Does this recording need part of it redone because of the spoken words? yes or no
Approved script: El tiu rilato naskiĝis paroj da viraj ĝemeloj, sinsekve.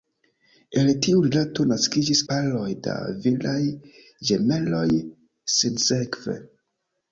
no